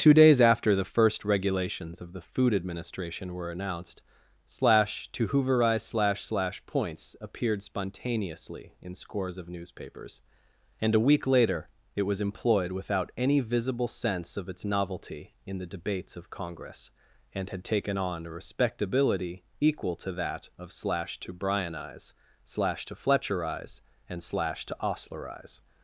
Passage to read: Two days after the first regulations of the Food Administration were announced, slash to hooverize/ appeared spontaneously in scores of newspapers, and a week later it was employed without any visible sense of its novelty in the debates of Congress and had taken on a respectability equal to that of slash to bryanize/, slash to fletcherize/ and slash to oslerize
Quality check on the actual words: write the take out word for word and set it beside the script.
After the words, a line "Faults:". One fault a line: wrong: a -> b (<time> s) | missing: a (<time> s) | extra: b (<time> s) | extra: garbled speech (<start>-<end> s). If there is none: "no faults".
Two days after the first regulations of the Food Administration were announced, slash to hooverize/ slash slash points appeared spontaneously in scores of newspapers, and a week later it was employed without any visible sense of its novelty in the debates of Congress and had taken on a respectability equal to that of slash to bryanize/, slash to fletcherize/ and slash to oslerize
Faults:
extra: slash slash points (5.8 s)